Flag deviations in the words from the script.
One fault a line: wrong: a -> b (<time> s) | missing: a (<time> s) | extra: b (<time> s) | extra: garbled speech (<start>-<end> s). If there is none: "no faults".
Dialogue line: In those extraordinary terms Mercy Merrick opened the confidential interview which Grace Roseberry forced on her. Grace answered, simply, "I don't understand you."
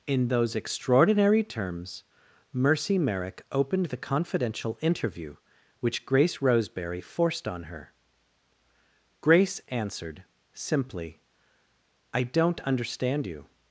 no faults